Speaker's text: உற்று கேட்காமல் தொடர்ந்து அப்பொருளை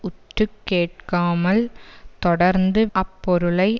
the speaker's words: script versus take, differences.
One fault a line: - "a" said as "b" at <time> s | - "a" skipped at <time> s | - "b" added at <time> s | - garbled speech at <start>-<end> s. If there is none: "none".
none